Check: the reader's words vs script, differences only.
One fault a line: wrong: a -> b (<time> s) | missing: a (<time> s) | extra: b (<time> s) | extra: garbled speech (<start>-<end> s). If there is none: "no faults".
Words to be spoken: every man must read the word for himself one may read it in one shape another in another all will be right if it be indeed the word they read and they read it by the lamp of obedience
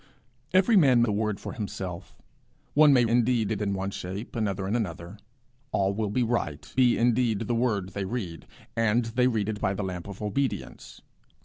missing: must read (1.0 s)
wrong: read -> indeed (3.1 s)
missing: if it (6.7 s)